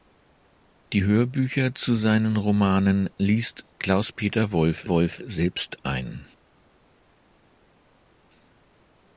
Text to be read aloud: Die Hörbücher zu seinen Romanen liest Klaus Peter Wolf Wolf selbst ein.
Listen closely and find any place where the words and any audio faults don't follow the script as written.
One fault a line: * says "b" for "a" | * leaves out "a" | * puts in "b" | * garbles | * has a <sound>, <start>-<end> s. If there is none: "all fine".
all fine